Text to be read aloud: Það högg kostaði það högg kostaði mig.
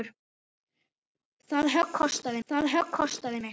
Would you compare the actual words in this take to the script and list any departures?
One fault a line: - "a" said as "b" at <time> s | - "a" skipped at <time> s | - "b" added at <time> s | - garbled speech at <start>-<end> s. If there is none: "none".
none